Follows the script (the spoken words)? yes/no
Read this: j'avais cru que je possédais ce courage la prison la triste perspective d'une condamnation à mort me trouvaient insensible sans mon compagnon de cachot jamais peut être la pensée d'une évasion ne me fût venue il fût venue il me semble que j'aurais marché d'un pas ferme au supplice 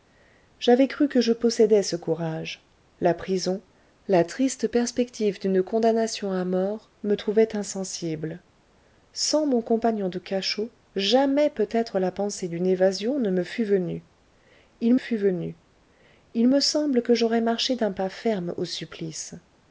yes